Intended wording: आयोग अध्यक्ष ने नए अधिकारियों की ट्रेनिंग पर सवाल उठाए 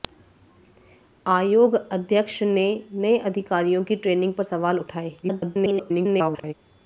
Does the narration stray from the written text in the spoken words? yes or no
yes